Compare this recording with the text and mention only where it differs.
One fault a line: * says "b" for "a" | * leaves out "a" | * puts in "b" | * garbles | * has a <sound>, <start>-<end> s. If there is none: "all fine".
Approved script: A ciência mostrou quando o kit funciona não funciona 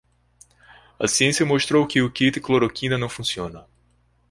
* says "que" for "quando"
* says "cloroquina" for "funciona"